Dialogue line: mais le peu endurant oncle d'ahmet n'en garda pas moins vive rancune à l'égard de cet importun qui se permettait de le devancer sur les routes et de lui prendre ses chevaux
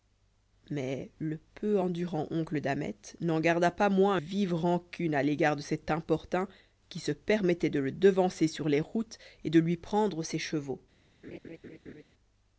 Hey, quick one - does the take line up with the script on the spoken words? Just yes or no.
yes